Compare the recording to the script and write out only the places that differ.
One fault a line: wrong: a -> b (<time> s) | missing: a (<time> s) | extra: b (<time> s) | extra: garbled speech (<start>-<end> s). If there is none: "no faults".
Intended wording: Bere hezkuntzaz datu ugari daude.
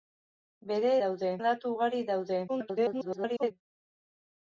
wrong: hezkuntzaz -> daude (1.0 s)
extra: garbled speech (2.5-3.5 s)